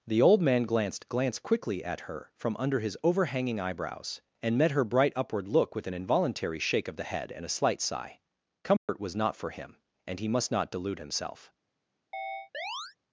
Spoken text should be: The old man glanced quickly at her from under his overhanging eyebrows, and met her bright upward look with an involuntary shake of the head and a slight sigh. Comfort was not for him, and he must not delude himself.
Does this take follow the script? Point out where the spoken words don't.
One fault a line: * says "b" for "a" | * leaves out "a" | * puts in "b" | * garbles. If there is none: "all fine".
* puts in "glanced"